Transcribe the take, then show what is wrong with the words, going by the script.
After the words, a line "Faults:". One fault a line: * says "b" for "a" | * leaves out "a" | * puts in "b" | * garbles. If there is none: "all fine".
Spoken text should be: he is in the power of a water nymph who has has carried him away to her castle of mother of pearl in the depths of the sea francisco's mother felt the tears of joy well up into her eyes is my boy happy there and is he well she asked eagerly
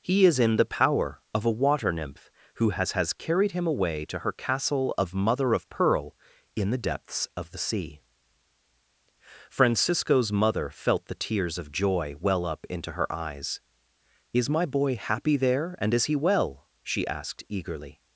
he is in the power of a water nymph who has has carried him away to her castle of mother of pearl in the depths of the sea francisco's mother felt the tears of joy well up into her eyes is my boy happy there and is he well she asked eagerly
Faults:
all fine